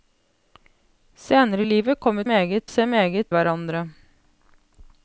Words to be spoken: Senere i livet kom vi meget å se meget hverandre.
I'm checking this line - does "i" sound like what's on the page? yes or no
yes